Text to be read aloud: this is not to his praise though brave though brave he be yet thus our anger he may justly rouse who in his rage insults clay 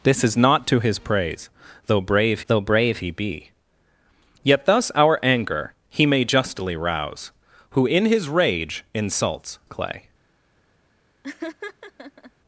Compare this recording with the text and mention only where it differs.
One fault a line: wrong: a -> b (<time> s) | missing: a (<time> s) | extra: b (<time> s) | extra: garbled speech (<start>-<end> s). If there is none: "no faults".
no faults